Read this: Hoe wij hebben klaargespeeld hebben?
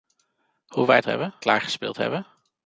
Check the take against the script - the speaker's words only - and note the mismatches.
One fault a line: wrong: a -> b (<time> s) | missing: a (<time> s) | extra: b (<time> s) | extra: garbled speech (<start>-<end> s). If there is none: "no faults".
no faults